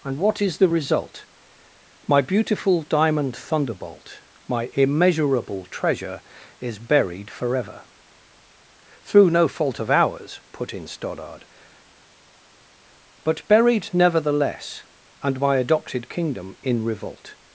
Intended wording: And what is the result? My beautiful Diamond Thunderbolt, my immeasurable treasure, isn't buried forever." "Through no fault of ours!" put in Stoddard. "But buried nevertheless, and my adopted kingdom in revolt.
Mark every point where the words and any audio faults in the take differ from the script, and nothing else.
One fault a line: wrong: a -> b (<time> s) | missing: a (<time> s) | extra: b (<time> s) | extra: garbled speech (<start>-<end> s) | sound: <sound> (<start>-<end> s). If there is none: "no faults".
wrong: isn't -> is (6.6 s)